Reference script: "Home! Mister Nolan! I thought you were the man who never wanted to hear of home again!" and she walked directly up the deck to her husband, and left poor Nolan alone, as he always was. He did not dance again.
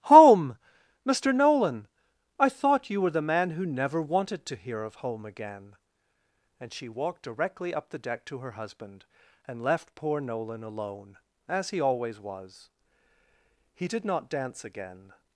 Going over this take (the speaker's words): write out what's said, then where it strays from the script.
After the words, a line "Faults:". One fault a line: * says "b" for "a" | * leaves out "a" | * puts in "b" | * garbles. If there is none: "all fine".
"Home! Mister Nolan! I thought you were the man who never wanted to hear of home again!" and she walked directly up the deck to her husband, and left poor Nolan alone, as he always was. He did not dance again.
Faults:
all fine